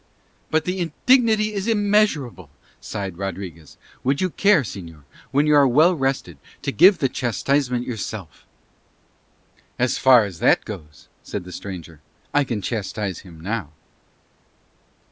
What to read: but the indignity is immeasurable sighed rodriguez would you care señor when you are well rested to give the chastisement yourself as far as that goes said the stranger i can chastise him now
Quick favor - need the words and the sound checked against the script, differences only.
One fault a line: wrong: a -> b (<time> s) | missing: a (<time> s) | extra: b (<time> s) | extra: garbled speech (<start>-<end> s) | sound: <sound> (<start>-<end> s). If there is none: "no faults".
no faults